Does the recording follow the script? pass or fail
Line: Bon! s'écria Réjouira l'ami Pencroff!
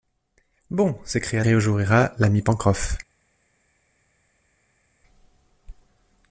pass